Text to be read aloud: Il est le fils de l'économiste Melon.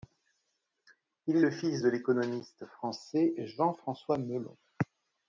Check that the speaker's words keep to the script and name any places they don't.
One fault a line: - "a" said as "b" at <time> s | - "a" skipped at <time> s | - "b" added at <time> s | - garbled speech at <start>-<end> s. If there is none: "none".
- "français Jean François" added at 2.7 s